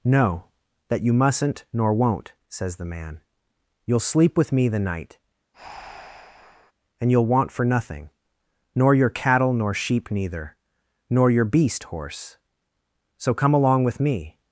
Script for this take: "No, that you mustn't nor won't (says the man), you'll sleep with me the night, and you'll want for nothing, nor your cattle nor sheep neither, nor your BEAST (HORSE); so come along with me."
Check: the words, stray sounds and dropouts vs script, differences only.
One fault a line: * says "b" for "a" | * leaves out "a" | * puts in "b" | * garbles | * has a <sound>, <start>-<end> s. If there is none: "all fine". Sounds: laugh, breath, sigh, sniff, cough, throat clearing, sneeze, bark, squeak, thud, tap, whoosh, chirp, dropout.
* has a breath, 5.5-6.7 s